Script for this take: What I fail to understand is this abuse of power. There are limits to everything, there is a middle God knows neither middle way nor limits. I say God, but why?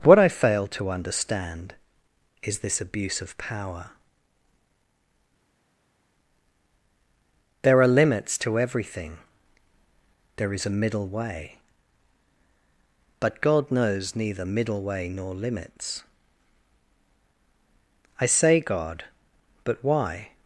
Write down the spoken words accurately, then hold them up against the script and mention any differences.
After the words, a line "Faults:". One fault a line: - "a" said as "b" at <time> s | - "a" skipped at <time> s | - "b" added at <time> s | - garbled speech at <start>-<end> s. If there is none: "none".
What I fail to understand is this abuse of power. There are limits to everything, there is a middle way. But God knows neither middle way nor limits. I say God, but why?
Faults:
- "way But" added at 11.1 s